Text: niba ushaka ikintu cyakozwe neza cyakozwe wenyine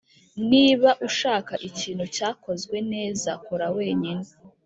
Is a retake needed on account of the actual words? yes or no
yes